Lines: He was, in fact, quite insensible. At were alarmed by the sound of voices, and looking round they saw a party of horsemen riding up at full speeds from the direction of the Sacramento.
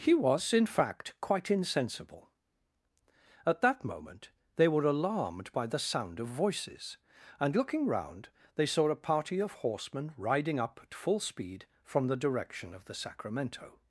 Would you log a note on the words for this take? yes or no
yes